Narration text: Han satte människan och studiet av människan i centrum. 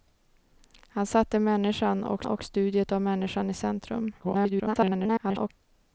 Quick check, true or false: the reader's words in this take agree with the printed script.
false